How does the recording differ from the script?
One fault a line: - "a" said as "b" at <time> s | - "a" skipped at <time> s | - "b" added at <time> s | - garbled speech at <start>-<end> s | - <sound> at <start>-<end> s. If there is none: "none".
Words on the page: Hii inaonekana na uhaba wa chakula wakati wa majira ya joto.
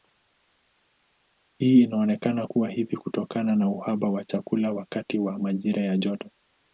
- "kuwa hivi kutokana" added at 2.4 s